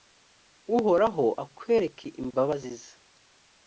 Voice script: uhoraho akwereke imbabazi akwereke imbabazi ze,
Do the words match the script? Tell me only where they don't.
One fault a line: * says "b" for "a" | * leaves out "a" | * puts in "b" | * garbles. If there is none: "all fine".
* leaves out "akwereke imbabazi"